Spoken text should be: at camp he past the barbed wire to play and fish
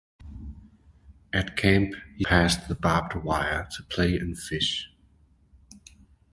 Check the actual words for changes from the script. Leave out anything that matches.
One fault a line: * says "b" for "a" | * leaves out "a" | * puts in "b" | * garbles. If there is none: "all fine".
all fine